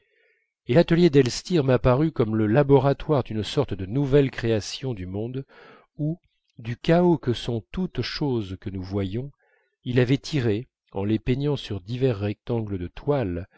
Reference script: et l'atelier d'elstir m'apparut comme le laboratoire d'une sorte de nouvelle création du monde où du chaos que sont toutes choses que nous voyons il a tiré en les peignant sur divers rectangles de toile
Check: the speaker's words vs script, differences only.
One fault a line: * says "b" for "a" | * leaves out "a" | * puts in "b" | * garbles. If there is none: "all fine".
* says "avait" for "a"